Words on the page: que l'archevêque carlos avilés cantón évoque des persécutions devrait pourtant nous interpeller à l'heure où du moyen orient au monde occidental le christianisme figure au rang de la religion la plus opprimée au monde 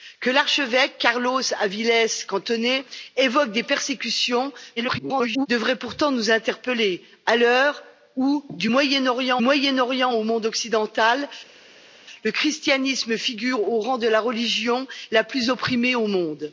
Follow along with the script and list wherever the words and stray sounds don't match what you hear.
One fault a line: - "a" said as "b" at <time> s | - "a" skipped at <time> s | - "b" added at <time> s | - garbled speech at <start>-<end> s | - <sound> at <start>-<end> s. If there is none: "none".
- garbled speech at 4.8-5.5 s
- "moyen orient" added at 9.4 s